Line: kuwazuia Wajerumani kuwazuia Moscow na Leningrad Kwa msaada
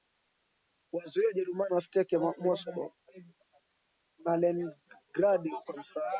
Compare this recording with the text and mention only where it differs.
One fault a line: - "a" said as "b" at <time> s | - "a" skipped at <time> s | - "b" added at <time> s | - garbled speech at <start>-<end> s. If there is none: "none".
- "kuwazuia" said as "wasiteke" at 1.8 s